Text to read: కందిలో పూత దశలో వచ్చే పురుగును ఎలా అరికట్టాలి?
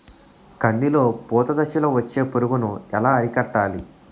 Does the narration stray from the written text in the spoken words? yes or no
no